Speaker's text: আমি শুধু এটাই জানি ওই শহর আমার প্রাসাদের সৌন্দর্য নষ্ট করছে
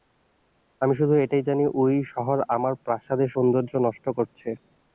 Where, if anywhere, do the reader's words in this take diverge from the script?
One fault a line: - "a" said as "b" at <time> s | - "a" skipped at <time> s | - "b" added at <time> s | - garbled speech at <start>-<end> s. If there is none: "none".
none